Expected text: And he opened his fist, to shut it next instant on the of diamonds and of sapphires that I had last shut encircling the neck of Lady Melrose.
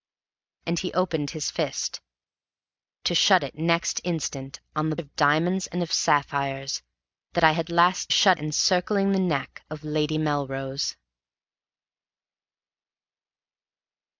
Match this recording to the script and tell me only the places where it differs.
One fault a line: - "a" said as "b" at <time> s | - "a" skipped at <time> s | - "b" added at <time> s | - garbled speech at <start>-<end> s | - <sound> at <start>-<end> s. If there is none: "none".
none